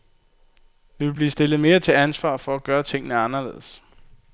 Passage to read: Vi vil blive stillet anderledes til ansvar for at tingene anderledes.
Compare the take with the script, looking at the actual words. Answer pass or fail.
fail